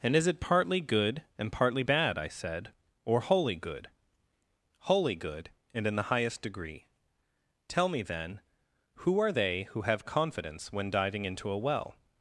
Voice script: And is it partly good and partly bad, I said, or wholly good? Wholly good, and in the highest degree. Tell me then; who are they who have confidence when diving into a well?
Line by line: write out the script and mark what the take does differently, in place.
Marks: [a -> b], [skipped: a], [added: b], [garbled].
And is it partly good and partly bad, I said, or wholly good? Wholly good, and in the highest degree. Tell me then; who are they who have confidence when diving into a well?